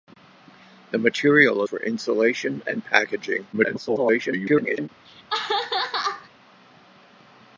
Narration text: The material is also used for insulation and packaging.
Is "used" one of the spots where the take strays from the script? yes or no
yes